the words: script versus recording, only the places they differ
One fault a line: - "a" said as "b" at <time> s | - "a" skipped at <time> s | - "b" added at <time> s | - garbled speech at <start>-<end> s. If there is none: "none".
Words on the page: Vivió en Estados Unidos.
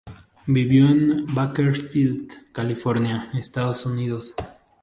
- "Bakersfield California" added at 1.3 s